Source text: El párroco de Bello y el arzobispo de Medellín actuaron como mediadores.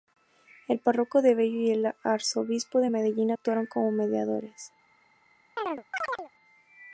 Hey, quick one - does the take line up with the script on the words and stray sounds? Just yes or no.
no